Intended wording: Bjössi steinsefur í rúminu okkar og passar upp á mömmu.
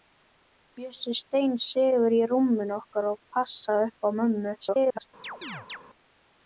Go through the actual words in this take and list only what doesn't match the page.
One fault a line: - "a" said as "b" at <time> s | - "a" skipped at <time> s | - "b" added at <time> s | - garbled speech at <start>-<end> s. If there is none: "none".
- garbled speech at 4.6-5.1 s